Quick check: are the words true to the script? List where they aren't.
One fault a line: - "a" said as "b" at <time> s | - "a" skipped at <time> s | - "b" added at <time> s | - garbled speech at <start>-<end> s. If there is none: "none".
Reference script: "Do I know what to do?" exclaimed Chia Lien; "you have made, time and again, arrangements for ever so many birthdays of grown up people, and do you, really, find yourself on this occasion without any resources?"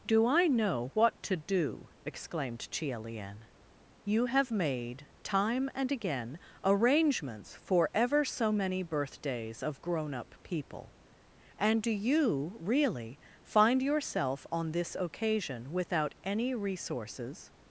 none